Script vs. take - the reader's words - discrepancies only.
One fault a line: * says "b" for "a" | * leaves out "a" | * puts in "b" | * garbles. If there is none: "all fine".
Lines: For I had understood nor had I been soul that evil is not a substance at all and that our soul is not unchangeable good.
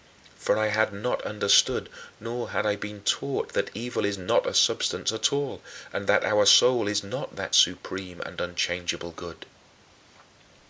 * puts in "not"
* says "taught" for "soul"
* puts in "that supreme and"